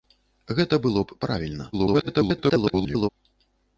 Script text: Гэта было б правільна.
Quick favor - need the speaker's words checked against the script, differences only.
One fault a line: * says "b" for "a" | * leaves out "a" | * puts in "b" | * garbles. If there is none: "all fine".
* garbles